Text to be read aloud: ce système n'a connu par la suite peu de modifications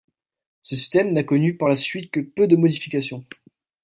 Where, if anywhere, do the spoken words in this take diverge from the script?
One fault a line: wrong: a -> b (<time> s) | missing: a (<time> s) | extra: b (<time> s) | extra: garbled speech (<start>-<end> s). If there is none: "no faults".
extra: que (2.1 s)